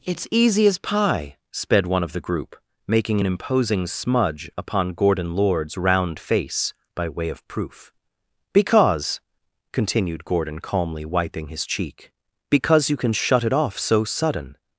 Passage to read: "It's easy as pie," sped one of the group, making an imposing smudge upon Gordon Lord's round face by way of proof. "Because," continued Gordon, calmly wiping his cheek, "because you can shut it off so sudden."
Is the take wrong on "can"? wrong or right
right